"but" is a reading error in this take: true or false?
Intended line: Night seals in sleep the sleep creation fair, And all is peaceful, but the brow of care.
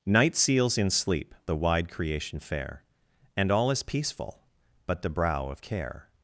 false